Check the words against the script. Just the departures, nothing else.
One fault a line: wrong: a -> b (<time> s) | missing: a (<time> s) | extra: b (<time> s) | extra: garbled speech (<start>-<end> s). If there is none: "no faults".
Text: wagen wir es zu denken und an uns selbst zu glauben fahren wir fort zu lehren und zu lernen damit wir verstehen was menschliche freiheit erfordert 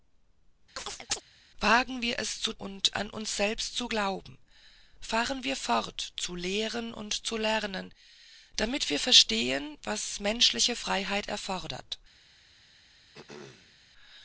missing: denken (2.5 s)